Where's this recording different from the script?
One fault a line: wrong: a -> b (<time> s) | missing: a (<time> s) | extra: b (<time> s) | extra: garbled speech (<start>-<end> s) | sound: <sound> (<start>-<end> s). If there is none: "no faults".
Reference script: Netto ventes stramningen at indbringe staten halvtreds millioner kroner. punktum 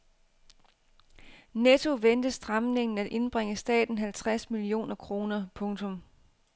no faults